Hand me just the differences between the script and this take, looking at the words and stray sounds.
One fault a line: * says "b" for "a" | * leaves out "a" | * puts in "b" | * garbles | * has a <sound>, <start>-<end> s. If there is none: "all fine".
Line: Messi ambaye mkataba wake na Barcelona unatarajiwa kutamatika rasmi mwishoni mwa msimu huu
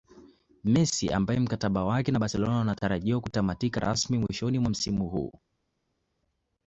all fine